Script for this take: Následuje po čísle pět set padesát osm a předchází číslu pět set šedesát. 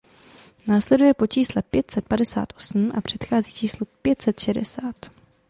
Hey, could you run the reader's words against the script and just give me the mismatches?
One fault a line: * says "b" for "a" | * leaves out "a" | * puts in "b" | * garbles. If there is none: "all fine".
all fine